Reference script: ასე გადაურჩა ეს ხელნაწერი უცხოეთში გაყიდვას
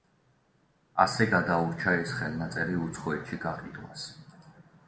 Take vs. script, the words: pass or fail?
pass